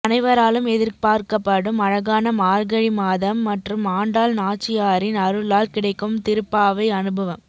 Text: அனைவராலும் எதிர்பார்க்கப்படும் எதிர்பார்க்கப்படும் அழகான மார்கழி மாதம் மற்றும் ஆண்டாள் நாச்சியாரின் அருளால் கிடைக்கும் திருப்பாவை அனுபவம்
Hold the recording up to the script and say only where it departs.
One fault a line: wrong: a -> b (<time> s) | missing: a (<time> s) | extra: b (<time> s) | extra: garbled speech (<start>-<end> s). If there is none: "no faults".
missing: எதிர்பார்க்கப்படும் (1.8 s)